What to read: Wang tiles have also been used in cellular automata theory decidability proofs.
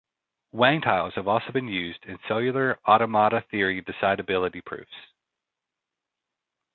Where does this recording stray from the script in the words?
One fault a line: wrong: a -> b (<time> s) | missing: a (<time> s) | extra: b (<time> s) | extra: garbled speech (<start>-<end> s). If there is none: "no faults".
no faults